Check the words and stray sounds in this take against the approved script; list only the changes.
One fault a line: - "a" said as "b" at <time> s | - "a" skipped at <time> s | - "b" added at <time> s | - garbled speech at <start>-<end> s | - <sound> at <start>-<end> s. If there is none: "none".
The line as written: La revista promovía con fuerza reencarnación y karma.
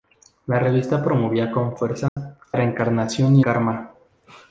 - dropout at 2.1-2.2 s